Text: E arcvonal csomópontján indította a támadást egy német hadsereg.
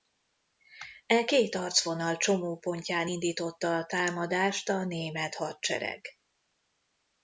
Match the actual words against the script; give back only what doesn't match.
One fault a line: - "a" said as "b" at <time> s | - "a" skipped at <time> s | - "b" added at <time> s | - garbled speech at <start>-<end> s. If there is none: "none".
- "két" added at 1.2 s
- "egy" said as "a" at 4.7 s